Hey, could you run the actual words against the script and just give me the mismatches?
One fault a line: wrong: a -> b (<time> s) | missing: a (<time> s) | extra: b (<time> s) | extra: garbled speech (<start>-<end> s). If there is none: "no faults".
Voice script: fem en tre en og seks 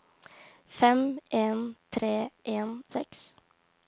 no faults